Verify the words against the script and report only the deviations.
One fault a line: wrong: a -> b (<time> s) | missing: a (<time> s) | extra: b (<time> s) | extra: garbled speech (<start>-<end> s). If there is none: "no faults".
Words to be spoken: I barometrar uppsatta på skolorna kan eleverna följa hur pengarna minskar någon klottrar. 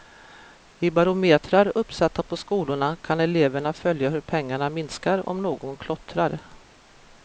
extra: om (5.3 s)